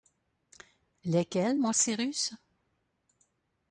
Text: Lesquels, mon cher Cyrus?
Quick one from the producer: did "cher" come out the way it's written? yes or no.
no